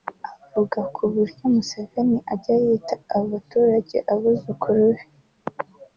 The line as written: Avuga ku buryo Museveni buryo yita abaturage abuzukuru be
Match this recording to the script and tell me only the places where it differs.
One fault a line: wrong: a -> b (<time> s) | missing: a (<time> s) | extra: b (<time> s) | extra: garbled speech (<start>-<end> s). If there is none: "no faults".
wrong: buryo -> ajya (2.3 s)